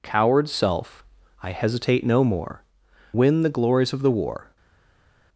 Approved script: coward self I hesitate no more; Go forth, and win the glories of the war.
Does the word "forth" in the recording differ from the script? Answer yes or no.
yes